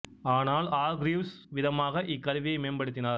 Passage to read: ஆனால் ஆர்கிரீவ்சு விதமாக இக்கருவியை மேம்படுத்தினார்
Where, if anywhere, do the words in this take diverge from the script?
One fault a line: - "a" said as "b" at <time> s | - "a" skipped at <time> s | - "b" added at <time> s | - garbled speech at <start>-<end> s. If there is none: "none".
none